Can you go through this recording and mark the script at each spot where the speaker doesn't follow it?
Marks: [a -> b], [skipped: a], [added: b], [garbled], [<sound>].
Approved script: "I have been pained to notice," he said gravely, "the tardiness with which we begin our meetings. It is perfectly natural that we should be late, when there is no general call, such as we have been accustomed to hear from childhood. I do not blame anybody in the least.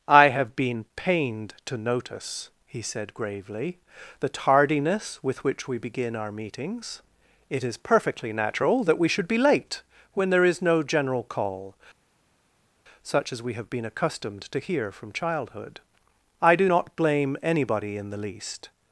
"I have been pained to notice," he said gravely, "the tardiness with which we begin our meetings. It is perfectly natural that we should be late, when there is no general call, such as we have been accustomed to hear from childhood. I do not blame anybody in the least.